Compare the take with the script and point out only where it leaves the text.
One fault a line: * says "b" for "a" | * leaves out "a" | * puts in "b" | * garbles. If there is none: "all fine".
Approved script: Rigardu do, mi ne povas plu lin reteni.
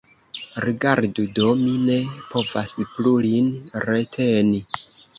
all fine